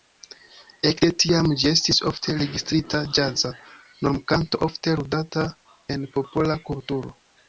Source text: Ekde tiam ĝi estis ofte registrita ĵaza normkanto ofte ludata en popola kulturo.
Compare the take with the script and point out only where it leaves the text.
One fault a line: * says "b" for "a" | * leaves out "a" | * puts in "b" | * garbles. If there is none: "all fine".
all fine